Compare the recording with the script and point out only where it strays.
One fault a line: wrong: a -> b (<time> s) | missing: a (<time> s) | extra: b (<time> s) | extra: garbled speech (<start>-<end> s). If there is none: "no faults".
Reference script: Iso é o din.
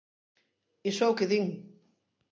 extra: que (1.2 s)